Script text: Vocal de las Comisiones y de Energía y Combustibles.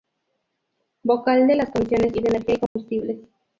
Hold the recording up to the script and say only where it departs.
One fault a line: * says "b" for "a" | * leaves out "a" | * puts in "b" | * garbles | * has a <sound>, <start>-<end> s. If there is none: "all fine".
* has a dropout, 2.7-2.8 s